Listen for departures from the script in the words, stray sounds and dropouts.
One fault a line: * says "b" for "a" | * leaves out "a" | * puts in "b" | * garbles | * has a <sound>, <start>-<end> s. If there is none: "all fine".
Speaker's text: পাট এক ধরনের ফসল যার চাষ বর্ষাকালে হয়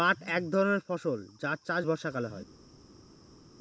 all fine